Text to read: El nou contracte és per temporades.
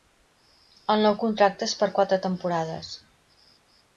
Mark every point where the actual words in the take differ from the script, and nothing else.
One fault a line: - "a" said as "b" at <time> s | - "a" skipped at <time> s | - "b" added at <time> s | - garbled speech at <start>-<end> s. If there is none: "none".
- "quatre" added at 2.0 s